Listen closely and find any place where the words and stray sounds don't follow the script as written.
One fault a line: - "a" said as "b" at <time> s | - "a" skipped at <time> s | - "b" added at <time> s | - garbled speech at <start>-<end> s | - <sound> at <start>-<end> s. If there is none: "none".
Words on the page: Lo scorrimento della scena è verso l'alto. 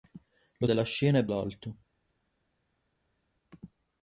- "scorrimento" skipped at 0.7 s
- "verso" skipped at 1.3 s